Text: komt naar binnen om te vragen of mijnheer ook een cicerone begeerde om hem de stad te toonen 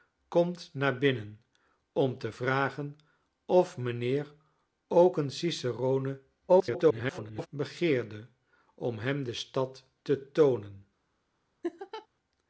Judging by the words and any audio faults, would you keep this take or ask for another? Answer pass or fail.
fail